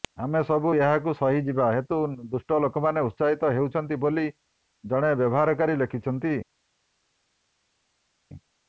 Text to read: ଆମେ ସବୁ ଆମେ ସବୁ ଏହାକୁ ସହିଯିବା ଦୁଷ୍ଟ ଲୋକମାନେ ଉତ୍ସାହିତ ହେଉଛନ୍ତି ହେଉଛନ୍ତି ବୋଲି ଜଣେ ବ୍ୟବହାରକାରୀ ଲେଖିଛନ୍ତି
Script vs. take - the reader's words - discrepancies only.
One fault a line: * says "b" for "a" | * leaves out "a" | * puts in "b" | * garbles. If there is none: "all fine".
* leaves out "ଆମେ ସବୁ"
* puts in "ହେତୁ"
* leaves out "ହେଉଛନ୍ତି"